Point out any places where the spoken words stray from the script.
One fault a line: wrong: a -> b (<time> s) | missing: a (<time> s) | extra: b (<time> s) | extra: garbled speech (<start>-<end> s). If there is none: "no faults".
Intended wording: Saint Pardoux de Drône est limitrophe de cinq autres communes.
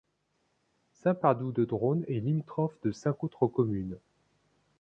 no faults